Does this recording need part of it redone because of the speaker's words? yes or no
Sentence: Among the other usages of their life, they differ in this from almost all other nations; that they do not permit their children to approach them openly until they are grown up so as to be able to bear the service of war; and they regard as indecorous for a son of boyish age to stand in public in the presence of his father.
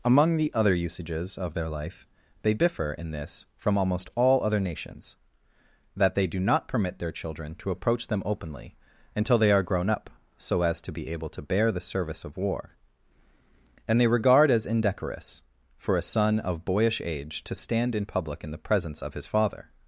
no